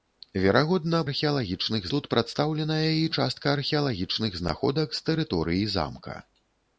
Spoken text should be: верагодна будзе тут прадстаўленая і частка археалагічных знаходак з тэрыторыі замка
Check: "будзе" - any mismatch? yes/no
yes